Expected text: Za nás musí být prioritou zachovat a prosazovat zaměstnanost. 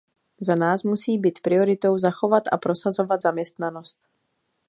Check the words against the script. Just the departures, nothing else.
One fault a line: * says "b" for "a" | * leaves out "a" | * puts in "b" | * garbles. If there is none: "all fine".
all fine